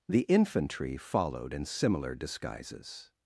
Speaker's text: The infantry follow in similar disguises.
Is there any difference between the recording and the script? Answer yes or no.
yes